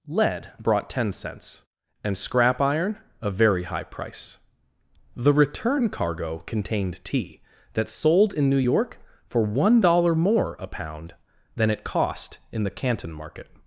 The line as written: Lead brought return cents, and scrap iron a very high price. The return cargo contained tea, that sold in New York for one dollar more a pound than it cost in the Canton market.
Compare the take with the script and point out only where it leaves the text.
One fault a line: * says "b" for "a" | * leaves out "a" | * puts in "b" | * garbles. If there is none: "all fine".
* says "ten" for "return"